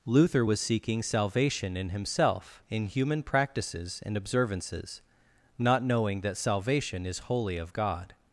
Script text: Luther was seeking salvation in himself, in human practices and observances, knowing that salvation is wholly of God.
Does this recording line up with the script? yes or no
no